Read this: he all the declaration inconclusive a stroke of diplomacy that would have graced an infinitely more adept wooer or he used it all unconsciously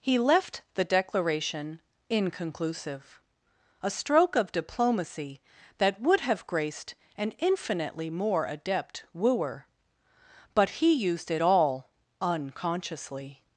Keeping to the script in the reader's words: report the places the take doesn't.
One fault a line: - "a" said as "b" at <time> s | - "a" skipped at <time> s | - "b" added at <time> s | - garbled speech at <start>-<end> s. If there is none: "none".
- "all" said as "left" at 0.2 s
- "or" said as "but" at 10.5 s